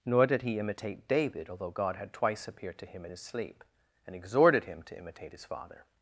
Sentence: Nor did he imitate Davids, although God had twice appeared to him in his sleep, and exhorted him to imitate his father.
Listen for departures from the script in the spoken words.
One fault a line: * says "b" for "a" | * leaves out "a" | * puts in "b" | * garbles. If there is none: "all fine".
* says "David" for "Davids"